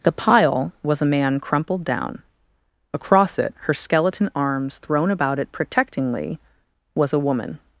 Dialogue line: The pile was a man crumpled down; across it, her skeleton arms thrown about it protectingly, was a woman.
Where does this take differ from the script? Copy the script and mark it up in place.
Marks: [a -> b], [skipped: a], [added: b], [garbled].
The pile was a man crumpled down; across it, her skeleton arms thrown about it protectingly, was a woman.